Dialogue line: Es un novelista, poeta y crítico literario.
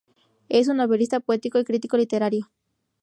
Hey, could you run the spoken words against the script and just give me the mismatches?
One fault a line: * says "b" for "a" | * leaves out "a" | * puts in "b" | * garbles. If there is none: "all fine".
all fine